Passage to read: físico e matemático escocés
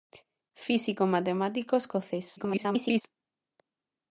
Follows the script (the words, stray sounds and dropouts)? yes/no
no